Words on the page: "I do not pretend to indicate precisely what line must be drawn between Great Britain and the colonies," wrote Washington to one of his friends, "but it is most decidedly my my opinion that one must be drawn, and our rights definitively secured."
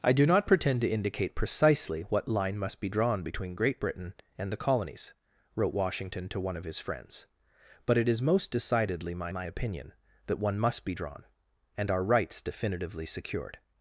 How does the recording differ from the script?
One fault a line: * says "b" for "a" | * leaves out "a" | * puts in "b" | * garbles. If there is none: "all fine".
all fine